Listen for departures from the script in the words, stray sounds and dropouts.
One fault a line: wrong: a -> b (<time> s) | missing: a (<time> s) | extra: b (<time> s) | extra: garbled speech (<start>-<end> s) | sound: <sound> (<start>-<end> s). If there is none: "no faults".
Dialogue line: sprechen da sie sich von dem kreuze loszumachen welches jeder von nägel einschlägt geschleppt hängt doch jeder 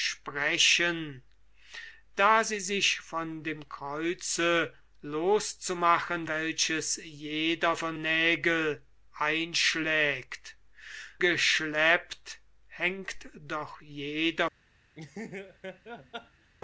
sound: laugh (14.9-16.5 s)